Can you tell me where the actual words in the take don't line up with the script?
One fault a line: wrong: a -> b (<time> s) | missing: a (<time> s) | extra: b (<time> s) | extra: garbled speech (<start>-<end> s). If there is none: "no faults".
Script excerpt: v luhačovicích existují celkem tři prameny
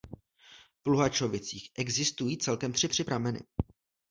extra: tři (2.9 s)